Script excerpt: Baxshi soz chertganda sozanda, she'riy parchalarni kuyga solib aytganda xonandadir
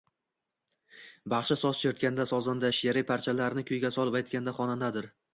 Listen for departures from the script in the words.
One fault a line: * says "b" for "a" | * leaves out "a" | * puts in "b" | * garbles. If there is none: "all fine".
all fine